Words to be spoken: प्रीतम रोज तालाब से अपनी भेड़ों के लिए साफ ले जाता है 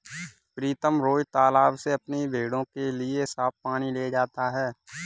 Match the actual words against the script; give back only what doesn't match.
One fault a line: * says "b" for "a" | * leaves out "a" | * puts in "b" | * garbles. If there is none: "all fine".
* puts in "पानी"